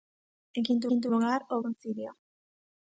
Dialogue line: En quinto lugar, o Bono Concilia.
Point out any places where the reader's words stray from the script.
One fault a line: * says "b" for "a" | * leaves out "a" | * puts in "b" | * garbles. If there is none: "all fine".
* puts in "quinto"
* leaves out "Bono"